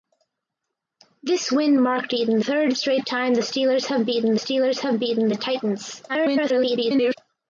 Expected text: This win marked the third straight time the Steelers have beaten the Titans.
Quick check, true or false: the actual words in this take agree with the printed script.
false